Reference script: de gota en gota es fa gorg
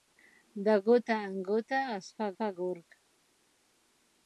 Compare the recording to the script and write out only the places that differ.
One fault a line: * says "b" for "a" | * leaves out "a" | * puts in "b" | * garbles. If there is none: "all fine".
* puts in "fa"